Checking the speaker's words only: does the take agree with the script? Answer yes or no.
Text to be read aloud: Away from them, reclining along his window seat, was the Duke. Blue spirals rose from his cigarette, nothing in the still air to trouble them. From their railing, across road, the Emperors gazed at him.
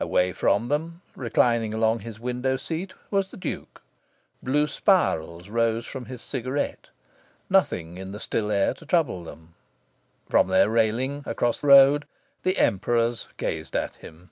yes